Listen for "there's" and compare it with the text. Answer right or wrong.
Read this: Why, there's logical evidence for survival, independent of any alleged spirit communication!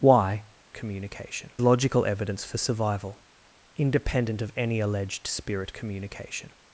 wrong